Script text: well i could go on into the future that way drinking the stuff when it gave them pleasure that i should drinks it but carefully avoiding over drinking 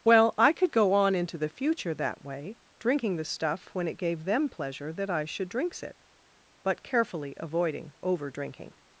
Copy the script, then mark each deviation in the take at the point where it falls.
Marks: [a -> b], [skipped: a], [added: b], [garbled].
well i could go on into the future that way drinking the stuff when it gave them pleasure that i should drinks it but carefully avoiding over drinking